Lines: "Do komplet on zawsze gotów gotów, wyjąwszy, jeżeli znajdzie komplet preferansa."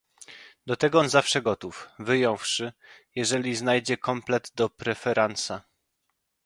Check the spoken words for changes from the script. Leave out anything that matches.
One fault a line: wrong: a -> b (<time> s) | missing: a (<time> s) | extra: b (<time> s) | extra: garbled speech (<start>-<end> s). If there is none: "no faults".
wrong: komplet -> tego (0.8 s)
missing: gotów (1.9 s)
extra: do (4.5 s)